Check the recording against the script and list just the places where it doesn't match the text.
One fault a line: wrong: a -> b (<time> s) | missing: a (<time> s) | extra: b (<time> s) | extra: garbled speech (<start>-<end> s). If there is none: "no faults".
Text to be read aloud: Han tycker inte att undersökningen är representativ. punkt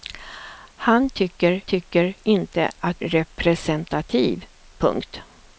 extra: tycker (1.6 s)
missing: undersökningen är (3.0 s)